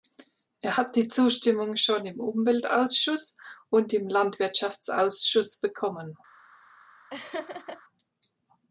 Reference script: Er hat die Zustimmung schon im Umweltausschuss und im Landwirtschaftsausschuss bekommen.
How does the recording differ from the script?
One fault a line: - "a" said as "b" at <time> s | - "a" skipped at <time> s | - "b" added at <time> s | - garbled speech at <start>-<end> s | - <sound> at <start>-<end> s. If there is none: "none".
- laugh at 7.1-7.8 s